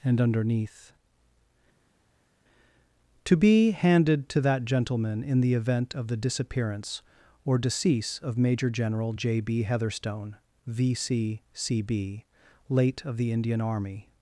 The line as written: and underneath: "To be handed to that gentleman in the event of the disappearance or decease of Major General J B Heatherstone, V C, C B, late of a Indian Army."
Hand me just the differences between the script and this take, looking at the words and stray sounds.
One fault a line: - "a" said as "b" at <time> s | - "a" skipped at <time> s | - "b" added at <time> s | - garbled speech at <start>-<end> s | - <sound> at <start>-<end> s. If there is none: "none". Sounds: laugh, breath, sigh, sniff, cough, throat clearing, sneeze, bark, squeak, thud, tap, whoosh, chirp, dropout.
- "a" said as "the" at 13.2 s